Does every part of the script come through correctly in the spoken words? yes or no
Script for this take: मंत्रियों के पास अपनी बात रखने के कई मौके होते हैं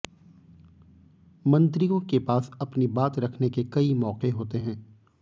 yes